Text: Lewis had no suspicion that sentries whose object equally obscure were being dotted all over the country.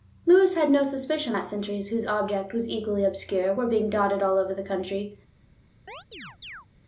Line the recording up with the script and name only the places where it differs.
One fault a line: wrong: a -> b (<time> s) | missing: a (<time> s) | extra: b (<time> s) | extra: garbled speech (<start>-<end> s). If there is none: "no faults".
extra: was (2.5 s)